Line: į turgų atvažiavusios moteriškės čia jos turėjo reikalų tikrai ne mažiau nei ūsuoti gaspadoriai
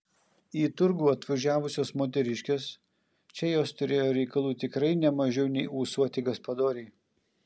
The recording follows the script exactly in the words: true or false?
true